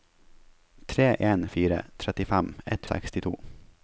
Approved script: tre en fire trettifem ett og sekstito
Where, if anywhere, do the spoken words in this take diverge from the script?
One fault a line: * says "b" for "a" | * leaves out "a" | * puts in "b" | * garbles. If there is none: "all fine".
all fine